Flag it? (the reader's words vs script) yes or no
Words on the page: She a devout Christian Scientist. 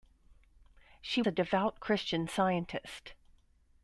no